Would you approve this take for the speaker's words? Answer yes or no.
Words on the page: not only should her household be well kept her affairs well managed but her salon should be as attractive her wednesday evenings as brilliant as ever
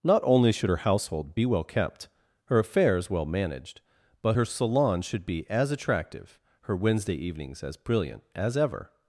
yes